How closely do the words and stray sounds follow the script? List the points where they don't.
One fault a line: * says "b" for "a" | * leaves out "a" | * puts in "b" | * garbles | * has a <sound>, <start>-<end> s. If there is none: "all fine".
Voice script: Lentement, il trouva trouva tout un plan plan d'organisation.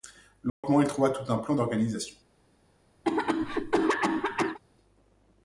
* has a dropout, 0.5-0.6 s
* leaves out "trouva"
* leaves out "plan"
* has a cough, 3.0-4.6 s